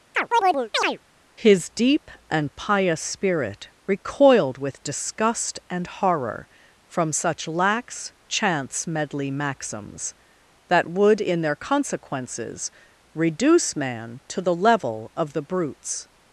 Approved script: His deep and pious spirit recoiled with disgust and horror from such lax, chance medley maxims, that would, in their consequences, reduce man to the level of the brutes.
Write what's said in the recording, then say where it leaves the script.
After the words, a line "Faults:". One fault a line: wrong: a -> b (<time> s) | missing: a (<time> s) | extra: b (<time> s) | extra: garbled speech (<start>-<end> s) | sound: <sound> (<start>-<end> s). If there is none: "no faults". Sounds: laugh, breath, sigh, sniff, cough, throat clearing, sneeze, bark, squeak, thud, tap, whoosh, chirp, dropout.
His deep and pious spirit recoiled with disgust and horror from such lax, chance medley maxims, that would, in their consequences, reduce man to the level of the brutes.
Faults:
sound: chirp (0.1-1.0 s)